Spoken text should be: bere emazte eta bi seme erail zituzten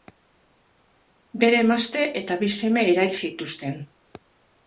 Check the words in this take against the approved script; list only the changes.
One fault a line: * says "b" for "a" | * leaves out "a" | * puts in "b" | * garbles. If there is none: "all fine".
all fine